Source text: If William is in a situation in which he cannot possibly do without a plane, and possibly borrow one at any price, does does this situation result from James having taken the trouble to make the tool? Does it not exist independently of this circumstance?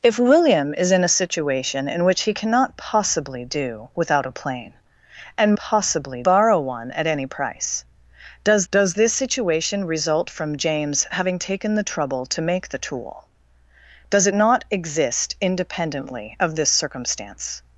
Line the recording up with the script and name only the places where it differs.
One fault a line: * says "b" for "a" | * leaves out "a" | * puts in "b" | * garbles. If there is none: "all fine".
all fine